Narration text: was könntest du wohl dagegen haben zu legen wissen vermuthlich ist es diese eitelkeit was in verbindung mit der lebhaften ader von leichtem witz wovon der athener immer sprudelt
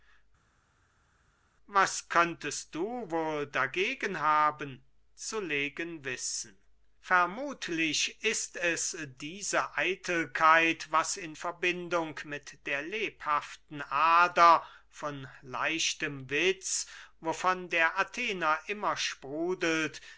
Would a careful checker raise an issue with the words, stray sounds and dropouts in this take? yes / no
no